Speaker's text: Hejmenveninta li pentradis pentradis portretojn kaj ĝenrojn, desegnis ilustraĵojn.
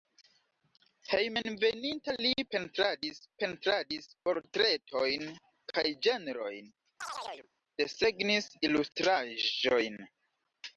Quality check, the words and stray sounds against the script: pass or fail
fail